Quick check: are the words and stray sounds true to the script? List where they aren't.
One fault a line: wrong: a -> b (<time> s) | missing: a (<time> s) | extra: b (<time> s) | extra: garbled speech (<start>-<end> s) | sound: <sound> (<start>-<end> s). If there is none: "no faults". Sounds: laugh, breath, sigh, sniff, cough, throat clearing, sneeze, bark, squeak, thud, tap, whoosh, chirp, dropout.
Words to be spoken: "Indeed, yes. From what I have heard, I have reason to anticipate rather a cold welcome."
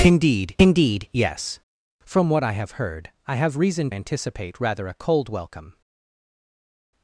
extra: indeed (0.6 s)
missing: to (3.9 s)